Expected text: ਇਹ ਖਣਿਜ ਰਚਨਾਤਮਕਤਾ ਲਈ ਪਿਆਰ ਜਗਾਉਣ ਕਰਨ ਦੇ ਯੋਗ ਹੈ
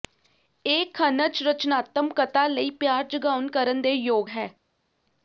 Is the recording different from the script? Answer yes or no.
no